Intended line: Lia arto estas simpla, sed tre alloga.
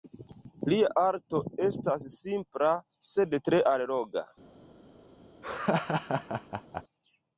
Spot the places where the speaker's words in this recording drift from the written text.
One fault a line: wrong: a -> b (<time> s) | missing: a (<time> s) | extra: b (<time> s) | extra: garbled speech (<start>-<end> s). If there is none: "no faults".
no faults